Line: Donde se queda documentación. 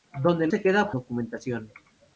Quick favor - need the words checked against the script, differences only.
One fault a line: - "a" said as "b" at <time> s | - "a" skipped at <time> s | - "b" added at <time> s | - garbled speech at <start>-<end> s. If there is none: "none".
none